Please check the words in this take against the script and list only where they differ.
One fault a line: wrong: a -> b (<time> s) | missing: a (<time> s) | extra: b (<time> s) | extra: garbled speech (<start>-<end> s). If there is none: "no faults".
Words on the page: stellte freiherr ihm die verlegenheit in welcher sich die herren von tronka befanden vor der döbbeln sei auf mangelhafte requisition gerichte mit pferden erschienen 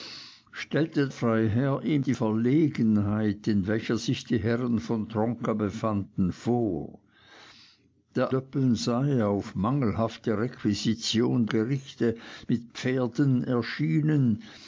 no faults